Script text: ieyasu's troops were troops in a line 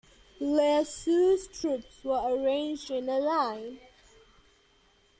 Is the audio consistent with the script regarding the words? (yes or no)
no